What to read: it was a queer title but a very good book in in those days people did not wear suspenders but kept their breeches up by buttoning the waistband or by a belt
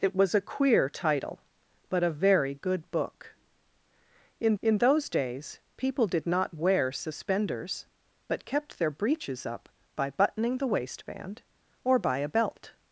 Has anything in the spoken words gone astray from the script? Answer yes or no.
no